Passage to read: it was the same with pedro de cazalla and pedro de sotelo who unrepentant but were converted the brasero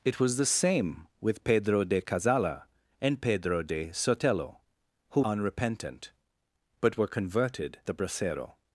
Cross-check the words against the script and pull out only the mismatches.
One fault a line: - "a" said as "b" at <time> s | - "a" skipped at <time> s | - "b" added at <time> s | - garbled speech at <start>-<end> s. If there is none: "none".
none